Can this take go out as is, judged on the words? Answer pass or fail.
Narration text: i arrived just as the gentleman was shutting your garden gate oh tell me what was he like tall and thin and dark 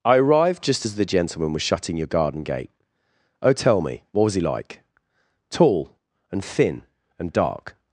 pass